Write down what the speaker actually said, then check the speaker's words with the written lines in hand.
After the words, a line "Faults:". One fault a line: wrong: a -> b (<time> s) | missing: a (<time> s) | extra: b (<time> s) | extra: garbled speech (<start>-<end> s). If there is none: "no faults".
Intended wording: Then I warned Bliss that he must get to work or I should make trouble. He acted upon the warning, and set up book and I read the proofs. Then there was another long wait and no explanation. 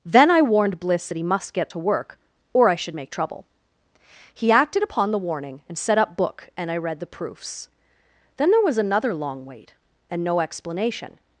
Then I warned Bliss that he must get to work or I should make trouble. He acted upon the warning, and set up book and I read the proofs. Then there was another long wait and no explanation.
Faults:
no faults